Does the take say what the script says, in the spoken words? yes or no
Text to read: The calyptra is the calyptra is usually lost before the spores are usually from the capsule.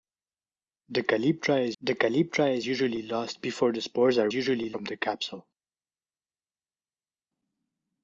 yes